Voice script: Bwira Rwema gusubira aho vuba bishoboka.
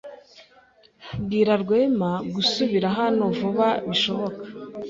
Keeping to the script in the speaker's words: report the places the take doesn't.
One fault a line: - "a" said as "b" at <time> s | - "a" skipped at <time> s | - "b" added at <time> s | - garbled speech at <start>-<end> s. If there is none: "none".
- "aho" said as "hano" at 3.0 s